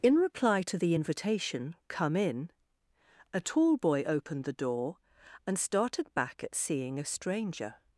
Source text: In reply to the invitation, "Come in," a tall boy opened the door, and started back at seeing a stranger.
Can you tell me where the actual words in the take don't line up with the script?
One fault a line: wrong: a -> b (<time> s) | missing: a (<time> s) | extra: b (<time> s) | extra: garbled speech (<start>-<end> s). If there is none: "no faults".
no faults